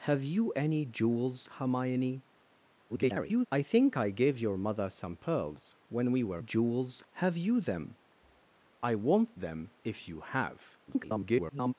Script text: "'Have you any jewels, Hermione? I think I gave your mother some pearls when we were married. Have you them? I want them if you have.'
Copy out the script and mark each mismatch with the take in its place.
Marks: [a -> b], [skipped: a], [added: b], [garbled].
"'Have you any jewels, Hermione? [garbled] I think I gave your mother some pearls when we were [married. -> jewels] Have you them? I want them if you have.' [garbled]